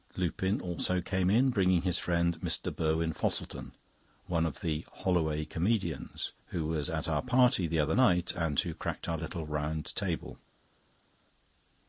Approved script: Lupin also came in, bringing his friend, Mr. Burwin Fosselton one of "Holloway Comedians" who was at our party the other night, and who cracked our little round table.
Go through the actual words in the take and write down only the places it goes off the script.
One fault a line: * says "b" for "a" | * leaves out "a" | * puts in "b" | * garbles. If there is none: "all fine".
* puts in "the"